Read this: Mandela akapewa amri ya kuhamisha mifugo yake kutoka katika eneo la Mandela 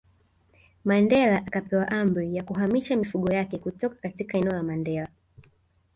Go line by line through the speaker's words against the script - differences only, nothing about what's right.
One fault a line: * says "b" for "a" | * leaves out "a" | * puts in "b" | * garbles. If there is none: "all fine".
all fine